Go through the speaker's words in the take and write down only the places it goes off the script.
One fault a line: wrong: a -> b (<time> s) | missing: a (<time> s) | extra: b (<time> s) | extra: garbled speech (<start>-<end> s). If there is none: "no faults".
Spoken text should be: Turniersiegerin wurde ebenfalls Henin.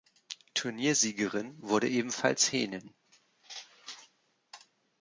no faults